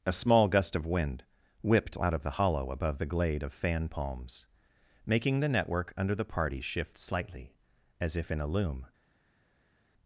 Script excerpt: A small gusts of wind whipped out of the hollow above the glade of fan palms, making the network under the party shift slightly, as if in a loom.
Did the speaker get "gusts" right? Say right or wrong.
wrong